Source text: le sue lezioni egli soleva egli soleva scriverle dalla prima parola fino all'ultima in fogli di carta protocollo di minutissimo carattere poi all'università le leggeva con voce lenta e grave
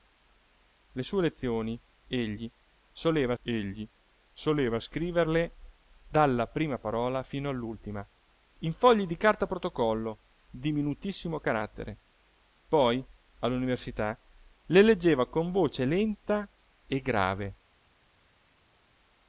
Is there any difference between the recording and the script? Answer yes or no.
no